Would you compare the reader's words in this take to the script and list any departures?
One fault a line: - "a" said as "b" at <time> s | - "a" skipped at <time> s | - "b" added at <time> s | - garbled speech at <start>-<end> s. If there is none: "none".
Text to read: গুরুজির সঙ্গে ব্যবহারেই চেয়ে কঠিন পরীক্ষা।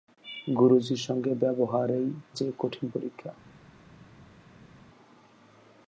none